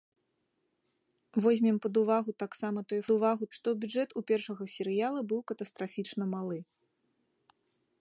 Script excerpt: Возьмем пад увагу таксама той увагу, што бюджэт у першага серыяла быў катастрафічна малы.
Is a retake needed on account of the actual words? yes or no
no